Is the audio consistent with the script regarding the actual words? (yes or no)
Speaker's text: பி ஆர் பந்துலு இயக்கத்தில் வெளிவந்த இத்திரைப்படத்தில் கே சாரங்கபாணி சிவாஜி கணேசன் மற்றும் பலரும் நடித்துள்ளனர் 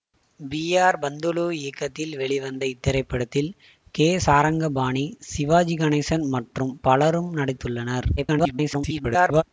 no